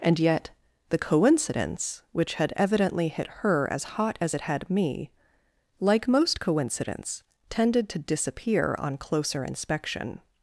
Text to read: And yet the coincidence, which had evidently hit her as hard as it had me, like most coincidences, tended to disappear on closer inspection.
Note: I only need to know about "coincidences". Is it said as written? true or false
false